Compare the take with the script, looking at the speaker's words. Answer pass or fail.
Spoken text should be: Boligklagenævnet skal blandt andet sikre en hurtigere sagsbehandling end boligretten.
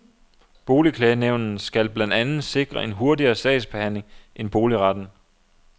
pass